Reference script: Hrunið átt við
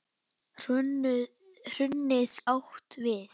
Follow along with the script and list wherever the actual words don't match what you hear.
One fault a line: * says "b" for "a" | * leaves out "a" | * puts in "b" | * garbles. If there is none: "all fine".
all fine